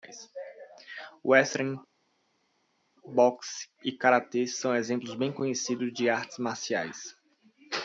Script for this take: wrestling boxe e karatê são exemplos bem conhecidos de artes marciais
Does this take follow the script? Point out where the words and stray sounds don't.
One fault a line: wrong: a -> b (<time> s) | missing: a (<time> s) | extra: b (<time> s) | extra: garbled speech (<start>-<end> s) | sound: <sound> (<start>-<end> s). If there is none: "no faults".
no faults